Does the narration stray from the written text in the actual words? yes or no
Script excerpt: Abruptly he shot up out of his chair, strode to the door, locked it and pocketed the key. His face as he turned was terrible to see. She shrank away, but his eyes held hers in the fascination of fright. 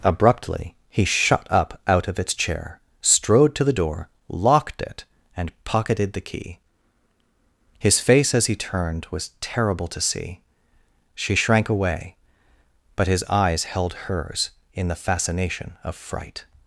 yes